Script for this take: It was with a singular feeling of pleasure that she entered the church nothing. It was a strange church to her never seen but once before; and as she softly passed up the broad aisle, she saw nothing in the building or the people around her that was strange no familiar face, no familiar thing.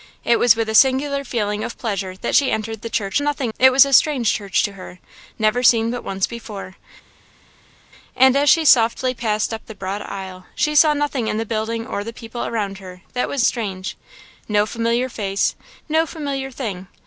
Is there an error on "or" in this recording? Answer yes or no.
no